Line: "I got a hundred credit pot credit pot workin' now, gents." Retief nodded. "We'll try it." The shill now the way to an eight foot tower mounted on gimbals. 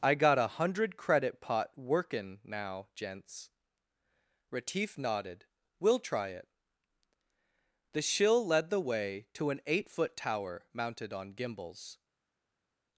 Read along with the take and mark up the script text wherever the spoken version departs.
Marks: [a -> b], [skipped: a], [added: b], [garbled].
"I got a hundred credit pot [skipped: credit pot] workin' now, gents." Retief nodded. "We'll try it." The shill [now -> led] the way to an eight foot tower mounted on gimbals.